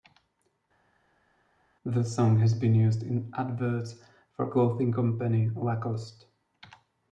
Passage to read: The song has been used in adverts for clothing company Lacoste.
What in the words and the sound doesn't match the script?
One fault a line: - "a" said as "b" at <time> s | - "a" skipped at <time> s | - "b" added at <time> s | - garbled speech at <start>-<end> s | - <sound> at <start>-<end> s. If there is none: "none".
none